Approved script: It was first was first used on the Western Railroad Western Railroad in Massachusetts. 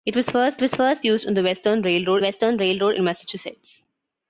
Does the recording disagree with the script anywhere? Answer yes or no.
no